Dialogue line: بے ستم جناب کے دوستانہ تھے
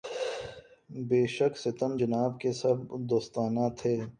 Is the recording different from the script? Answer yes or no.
yes